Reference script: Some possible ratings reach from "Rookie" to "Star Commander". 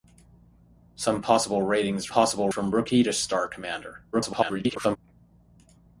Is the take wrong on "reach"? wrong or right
wrong